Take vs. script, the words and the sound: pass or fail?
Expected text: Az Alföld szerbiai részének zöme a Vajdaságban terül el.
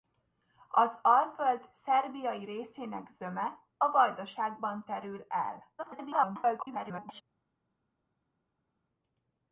fail